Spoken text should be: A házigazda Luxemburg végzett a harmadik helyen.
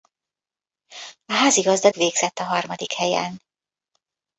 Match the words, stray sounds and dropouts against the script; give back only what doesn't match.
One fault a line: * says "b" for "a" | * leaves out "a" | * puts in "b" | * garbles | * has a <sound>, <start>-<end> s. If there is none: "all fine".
* leaves out "Luxemburg"